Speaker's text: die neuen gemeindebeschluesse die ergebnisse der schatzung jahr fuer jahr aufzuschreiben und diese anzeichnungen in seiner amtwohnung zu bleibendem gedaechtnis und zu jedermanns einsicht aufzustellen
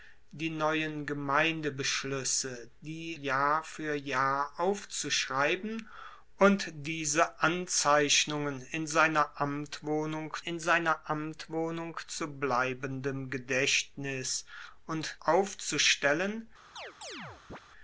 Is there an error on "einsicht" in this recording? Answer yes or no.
yes